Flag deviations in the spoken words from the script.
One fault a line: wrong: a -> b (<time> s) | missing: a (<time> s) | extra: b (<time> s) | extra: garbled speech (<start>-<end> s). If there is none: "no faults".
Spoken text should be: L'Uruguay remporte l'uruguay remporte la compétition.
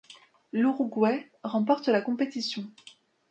missing: l'uruguay remporte (1.9 s)